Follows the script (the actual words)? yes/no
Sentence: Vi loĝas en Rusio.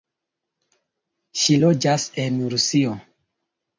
no